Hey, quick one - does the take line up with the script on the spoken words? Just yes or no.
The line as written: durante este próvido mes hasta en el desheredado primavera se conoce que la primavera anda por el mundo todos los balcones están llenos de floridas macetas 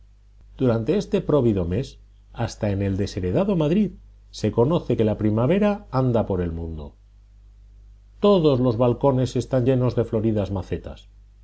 no